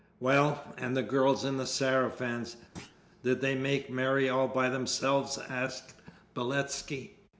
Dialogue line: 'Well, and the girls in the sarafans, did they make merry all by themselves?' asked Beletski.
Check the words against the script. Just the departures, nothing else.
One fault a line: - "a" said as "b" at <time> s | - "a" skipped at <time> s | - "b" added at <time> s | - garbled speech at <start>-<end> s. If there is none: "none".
none